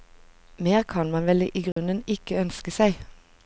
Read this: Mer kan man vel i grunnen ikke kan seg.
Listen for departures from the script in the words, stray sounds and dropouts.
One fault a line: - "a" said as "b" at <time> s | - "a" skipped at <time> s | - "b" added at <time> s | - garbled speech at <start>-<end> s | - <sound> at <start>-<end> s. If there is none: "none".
- dropout at 1.7-1.8 s
- "kan" said as "ønske" at 2.4 s